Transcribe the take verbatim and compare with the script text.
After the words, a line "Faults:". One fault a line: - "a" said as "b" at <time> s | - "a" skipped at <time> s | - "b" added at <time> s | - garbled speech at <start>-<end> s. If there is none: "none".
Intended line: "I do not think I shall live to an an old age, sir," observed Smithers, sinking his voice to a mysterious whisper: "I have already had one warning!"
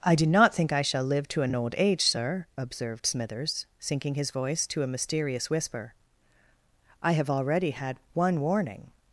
"I do not think I shall live to an an old age, sir," observed Smithers, sinking his voice to a mysterious whisper: "I have already had one warning!"
Faults:
none